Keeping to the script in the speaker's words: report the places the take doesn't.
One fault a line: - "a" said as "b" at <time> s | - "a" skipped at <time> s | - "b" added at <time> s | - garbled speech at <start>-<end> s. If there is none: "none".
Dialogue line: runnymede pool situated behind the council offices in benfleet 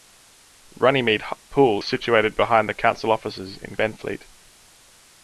none